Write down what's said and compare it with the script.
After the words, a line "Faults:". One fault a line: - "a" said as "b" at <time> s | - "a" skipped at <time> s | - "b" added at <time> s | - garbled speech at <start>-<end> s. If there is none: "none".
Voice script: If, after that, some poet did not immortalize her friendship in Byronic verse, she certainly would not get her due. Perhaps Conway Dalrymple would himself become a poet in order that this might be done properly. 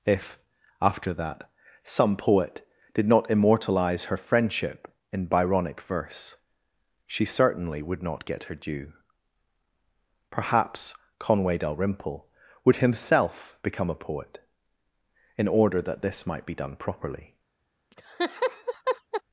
If, after that, some poet did not immortalize her friendship in Byronic verse, she certainly would not get her due. Perhaps Conway Dalrymple would himself become a poet in order that this might be done properly.
Faults:
none